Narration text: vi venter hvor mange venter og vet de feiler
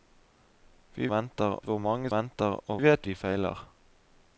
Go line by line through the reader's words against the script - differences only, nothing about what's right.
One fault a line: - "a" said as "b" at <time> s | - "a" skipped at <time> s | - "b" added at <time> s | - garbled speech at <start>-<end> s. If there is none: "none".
none